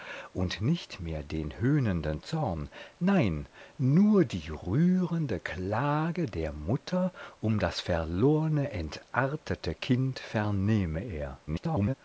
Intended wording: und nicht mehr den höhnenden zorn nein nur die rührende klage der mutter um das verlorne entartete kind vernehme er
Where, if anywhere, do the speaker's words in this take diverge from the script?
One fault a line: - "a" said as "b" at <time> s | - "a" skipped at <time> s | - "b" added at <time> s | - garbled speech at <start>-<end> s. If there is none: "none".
- garbled speech at 11.5-11.9 s